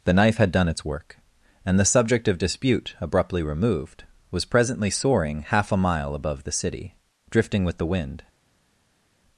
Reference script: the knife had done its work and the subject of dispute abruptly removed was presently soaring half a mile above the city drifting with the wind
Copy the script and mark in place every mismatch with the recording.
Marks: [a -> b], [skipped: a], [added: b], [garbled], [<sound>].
the knife had done its work and the subject of dispute abruptly removed was presently soaring half a mile above the city drifting with the wind